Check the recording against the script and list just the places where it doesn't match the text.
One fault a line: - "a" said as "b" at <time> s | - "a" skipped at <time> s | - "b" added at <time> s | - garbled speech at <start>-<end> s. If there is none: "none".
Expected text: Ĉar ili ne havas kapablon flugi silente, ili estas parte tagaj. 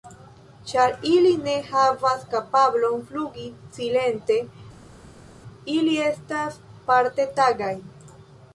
none